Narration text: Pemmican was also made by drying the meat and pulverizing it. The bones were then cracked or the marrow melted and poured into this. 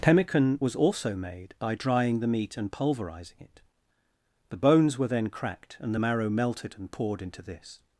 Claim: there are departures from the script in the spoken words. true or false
true